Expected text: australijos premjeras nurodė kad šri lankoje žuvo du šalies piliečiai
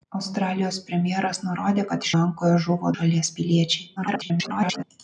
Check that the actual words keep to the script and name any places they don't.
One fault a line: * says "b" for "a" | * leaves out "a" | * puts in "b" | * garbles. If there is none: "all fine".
* leaves out "šri"
* leaves out "du"
* garbles